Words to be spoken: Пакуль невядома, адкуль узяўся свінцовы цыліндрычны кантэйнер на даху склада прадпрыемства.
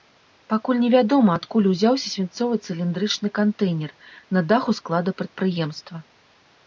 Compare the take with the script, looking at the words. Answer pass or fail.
pass